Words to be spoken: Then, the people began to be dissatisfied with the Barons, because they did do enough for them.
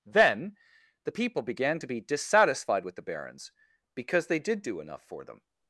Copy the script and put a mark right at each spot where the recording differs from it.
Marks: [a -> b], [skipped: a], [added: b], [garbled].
Then, the people began to be dissatisfied with the Barons, because they did do enough for them.